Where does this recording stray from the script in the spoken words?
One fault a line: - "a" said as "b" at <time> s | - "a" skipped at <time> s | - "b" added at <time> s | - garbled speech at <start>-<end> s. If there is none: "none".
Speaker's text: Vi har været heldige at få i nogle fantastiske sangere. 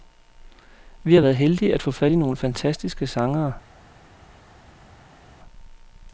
- "fat" added at 1.9 s